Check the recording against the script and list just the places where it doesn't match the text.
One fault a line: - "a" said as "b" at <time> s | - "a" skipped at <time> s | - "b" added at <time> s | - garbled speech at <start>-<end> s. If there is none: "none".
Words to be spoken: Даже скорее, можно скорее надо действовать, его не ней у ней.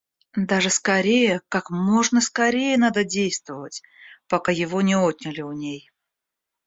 - "как" added at 1.5 s
- "пока" added at 4.3 s
- "ней" said as "отняли" at 4.9 s